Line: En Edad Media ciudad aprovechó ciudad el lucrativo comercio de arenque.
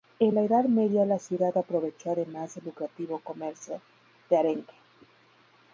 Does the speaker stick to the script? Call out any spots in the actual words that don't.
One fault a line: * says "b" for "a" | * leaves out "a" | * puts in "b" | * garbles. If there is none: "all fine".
* puts in "la"
* puts in "la"
* says "además" for "ciudad"